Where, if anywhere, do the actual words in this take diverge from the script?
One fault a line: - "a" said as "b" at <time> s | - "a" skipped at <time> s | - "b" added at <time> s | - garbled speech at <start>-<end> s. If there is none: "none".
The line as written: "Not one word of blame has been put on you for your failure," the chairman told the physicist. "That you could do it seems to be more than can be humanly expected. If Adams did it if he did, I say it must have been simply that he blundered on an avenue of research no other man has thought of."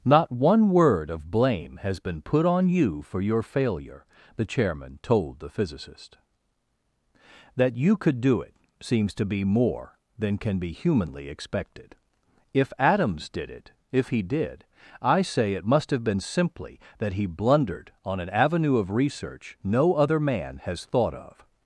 none